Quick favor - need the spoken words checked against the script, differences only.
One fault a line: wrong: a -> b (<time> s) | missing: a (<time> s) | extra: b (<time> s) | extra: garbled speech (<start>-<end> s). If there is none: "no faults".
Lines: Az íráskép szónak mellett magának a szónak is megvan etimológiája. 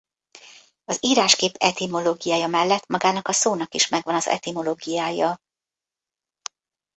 wrong: szónak -> etimológiája (1.6 s)
extra: az (4.2 s)